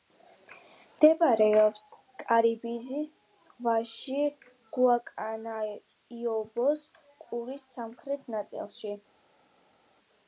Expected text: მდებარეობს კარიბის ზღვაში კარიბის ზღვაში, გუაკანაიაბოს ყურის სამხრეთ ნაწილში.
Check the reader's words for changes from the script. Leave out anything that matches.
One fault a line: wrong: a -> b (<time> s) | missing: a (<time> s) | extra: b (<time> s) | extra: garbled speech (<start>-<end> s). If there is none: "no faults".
missing: კარიბის ზღვაში (4.2 s)